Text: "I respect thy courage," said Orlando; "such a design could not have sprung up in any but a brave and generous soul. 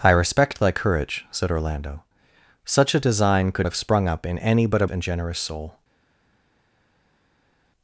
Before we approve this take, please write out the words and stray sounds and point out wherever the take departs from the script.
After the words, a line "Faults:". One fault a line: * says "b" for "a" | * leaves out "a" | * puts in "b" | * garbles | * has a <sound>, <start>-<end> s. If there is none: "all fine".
"I respect thy courage," said Orlando; "such a design could have sprung up in any but a and generous soul.
Faults:
* leaves out "not"
* leaves out "brave"